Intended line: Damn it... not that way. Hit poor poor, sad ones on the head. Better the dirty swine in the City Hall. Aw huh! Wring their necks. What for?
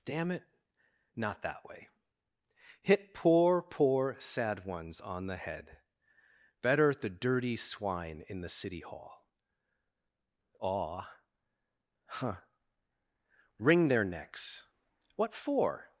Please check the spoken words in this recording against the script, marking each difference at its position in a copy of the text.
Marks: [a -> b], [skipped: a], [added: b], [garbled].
Damn it... not that way. Hit poor poor, sad ones on the head. Better the dirty swine in the City Hall. Aw huh! Wring their necks. What for?